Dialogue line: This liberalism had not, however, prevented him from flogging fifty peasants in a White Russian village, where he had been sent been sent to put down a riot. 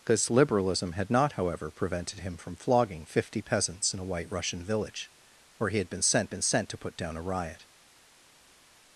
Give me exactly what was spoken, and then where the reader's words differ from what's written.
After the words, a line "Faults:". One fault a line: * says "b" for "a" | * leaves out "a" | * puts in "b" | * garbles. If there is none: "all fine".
This liberalism had not, however, prevented him from flogging fifty peasants in a White Russian village, where he had been sent been sent to put down a riot.
Faults:
all fine